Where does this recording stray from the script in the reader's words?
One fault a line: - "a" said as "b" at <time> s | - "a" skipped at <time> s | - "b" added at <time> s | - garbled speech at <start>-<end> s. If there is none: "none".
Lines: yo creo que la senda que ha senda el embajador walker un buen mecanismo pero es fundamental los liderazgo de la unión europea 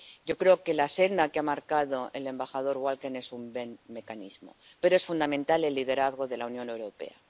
- "senda" said as "marcado" at 1.4 s
- "es" added at 3.1 s
- "los" said as "el" at 5.6 s